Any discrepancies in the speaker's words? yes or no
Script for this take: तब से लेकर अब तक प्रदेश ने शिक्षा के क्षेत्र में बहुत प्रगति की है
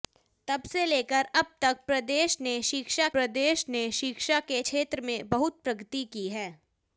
yes